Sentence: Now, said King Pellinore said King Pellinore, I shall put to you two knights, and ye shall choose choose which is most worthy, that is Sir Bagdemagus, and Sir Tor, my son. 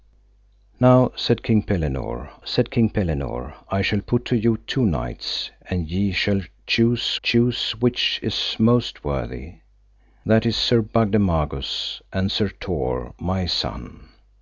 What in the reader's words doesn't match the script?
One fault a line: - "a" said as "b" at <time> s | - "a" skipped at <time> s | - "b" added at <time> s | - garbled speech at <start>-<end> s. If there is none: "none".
none